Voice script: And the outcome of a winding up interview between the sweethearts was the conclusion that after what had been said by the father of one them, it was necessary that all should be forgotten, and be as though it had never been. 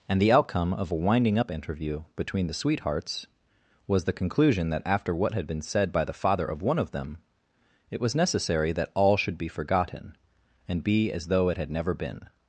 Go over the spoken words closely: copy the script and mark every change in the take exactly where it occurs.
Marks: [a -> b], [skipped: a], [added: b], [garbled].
And the outcome of a winding up interview between the sweethearts was the conclusion that after what had been said by the father of one [added: of] them, it was necessary that all should be forgotten, and be as though it had never been.